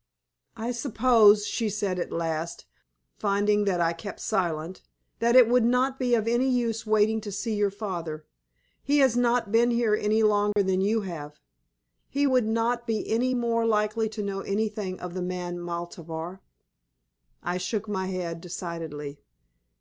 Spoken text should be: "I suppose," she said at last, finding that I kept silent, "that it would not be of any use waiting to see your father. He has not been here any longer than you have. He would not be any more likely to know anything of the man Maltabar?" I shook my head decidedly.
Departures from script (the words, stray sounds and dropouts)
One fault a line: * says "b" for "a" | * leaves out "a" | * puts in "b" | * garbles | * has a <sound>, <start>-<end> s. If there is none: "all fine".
* has a dropout, 10.5-10.6 s